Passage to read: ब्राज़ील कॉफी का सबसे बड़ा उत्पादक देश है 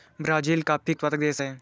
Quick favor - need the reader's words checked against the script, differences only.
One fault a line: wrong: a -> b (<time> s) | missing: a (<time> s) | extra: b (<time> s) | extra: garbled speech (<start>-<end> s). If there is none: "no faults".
missing: का सबसे बड़ा (0.9 s)